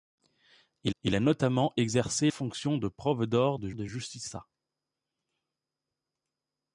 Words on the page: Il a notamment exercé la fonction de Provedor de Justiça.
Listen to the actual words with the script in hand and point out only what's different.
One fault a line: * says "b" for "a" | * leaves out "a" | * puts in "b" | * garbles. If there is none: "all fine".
* puts in "il"
* leaves out "la"
* puts in "de"